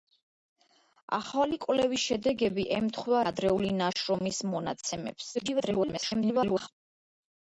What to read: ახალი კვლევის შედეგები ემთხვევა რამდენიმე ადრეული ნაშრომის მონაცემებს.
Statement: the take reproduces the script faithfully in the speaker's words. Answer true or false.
false